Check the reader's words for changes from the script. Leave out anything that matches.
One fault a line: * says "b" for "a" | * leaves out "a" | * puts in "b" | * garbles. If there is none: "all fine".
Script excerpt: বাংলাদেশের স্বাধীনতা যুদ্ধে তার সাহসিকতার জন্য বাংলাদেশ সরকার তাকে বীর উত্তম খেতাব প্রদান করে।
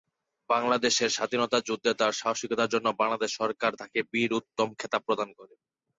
all fine